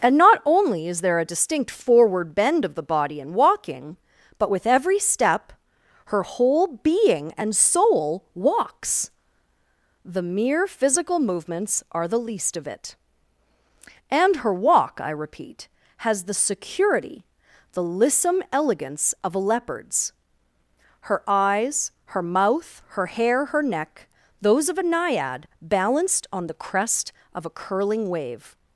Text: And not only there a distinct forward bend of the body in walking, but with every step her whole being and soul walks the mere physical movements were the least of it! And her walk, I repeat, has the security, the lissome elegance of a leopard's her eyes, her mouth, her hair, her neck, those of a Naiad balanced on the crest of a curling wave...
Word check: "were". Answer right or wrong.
wrong